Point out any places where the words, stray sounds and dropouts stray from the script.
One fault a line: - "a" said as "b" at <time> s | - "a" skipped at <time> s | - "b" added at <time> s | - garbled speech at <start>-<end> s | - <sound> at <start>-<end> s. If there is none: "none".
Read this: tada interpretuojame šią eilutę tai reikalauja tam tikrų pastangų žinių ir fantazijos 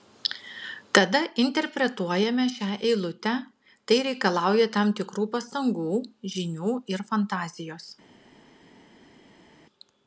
none